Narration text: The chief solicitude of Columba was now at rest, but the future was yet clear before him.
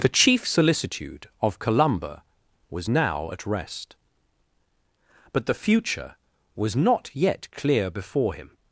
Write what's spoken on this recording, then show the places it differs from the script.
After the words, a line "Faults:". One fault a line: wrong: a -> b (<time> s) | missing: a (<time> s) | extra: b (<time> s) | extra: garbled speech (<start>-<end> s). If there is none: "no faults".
The chief solicitude of Columba was now at rest, but the future was not yet clear before him.
Faults:
extra: not (6.8 s)